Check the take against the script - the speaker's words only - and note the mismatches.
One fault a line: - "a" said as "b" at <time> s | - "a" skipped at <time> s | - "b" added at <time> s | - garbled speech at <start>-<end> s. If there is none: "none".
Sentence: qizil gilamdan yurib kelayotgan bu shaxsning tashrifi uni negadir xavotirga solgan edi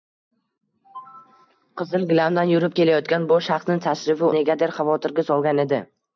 - "uni" skipped at 4.3 s